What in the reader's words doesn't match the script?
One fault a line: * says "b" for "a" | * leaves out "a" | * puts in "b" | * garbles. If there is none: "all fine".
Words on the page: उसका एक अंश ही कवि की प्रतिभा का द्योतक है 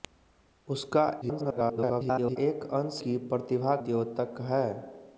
* garbles
* leaves out "ही कवि"
* leaves out "का"